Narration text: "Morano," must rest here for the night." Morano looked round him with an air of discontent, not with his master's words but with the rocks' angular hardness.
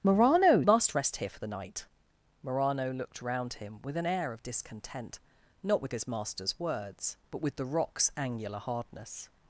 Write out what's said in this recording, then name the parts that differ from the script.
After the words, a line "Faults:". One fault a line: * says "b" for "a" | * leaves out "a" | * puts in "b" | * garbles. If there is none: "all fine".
"Morano," must rest here for the night." Morano looked round him with an air of discontent, not with his master's words but with the rocks' angular hardness.
Faults:
all fine